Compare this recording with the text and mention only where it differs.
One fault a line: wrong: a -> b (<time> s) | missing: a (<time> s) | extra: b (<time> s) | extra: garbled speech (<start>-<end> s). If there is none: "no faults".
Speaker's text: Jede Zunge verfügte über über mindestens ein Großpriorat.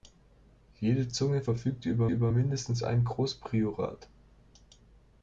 no faults